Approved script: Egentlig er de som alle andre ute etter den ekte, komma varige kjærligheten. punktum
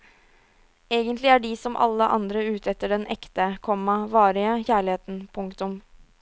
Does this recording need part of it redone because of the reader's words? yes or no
no